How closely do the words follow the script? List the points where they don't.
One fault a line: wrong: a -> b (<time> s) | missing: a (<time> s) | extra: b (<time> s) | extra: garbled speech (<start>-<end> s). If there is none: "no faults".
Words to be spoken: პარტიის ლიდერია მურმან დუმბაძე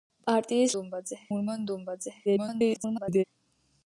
wrong: ლიდერია -> დუმბაძე (0.8 s)
extra: garbled speech (2.3-3.2 s)